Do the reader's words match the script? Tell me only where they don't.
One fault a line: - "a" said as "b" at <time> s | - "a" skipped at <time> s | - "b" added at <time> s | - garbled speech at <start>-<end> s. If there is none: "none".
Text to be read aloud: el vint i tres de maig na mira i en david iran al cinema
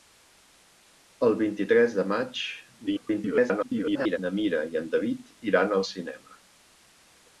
- garbled speech at 2.9-4.2 s